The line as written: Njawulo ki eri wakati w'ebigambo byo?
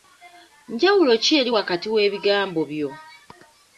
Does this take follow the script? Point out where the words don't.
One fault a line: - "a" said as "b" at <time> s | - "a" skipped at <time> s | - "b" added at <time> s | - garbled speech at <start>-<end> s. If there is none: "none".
none